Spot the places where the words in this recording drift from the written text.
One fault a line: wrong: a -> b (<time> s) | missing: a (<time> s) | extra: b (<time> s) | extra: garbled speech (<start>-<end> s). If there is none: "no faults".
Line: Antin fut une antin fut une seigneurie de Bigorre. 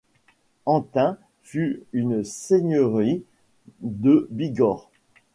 missing: antin fut une (2.2 s)